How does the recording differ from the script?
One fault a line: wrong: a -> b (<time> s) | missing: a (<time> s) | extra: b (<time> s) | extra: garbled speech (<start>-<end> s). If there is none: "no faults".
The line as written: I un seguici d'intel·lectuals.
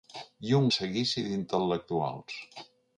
no faults